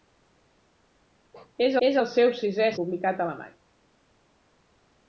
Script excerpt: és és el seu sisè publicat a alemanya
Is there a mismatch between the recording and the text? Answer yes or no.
no